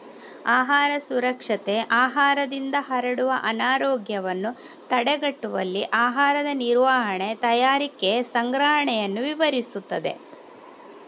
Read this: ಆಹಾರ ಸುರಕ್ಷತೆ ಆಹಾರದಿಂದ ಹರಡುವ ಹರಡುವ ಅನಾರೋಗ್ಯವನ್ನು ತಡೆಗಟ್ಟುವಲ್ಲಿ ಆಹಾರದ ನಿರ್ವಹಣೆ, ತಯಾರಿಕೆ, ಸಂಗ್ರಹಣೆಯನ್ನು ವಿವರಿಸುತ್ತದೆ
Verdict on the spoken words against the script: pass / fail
fail